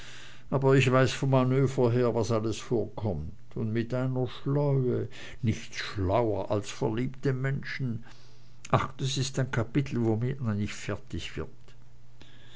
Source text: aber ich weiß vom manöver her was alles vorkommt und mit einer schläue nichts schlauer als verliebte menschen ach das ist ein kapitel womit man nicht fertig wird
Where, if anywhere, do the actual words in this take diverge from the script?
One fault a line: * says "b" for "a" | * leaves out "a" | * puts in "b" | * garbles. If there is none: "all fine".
all fine